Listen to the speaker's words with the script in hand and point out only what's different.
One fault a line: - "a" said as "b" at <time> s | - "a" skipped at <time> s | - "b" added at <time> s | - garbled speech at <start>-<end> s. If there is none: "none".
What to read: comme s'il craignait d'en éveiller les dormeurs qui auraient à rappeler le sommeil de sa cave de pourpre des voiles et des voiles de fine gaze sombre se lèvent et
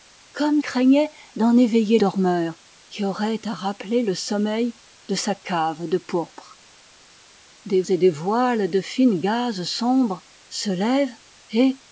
- "s'il" skipped at 0.6 s
- "les" skipped at 2.0 s
- "voiles" skipped at 7.8 s